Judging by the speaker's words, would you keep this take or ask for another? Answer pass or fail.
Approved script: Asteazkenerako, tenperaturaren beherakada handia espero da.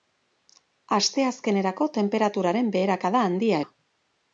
fail